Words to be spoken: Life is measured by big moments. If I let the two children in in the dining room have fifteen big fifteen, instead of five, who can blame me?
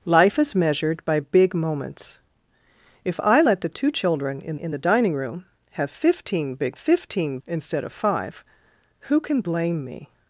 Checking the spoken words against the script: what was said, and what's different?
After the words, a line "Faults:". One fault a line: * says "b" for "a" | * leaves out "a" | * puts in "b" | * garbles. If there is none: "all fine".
Life is measured by big moments. If I let the two children in in the dining room have fifteen big fifteen, instead of five, who can blame me?
Faults:
all fine